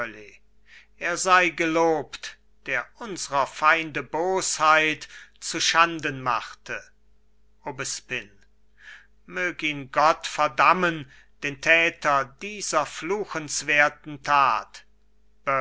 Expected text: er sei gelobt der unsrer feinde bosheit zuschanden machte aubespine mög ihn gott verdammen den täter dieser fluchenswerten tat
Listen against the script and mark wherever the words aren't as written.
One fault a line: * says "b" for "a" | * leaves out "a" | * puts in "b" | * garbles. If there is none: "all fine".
all fine